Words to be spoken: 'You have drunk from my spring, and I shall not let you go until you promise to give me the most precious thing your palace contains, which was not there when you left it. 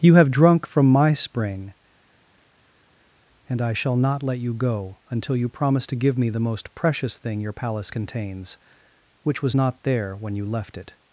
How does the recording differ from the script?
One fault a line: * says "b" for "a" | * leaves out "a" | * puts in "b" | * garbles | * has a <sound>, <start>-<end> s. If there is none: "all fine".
all fine